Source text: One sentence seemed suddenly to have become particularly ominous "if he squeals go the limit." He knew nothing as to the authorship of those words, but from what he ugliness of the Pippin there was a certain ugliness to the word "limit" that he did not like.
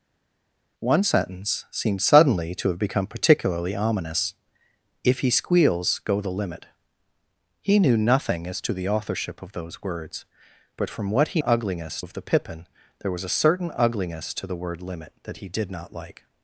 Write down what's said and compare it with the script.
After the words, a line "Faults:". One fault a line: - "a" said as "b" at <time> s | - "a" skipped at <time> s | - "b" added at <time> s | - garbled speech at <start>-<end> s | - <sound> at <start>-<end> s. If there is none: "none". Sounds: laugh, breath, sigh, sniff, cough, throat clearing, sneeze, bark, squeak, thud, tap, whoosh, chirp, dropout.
One sentence seemed suddenly to have become particularly ominous "if he squeals go the limit." He knew nothing as to the authorship of those words, but from what he ugliness of the Pippin there was a certain ugliness to the word "limit" that he did not like.
Faults:
none